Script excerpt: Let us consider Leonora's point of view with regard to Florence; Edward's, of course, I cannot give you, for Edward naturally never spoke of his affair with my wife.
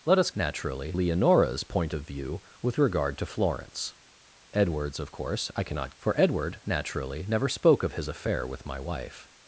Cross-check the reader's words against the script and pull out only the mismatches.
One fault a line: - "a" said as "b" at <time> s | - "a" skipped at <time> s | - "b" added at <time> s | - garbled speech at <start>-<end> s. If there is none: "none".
- "consider" said as "naturally" at 0.4 s
- "give you" skipped at 5.9 s